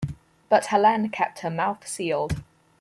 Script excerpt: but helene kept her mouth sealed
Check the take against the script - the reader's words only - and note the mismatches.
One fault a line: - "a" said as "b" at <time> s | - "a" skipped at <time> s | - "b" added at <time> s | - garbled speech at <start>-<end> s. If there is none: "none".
none